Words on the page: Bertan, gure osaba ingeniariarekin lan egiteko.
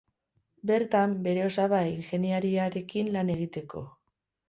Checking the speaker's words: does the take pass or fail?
fail